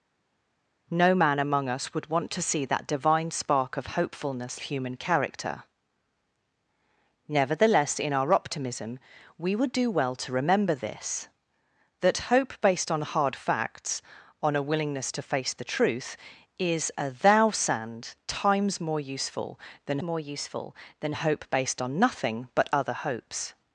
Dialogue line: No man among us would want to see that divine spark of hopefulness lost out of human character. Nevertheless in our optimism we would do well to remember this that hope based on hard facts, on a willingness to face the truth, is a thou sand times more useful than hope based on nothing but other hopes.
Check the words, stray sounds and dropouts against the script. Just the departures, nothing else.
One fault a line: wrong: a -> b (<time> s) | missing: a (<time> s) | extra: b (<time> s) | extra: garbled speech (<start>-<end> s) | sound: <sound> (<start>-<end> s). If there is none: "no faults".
missing: lost out of (4.6 s)
extra: more useful than (20.0 s)